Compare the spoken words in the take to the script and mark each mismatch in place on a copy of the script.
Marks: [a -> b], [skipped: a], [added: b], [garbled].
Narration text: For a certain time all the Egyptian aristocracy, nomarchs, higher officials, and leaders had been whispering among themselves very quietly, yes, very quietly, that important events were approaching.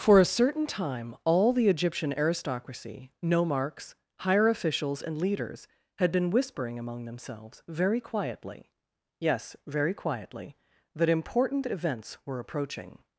For a certain time all the Egyptian aristocracy, nomarchs, higher officials, and leaders had been whispering among themselves very quietly, yes, very quietly, that important events were approaching.